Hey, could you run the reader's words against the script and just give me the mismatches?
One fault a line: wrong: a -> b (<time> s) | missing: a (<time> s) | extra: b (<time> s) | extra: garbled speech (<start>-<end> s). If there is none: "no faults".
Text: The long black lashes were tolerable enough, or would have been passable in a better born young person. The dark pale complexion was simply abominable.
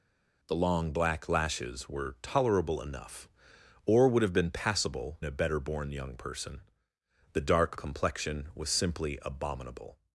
missing: in (5.2 s)
missing: pale (7.8 s)